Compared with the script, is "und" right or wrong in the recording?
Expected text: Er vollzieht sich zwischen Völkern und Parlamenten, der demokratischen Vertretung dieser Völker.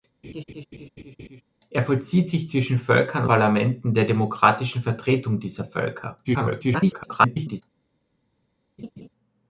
wrong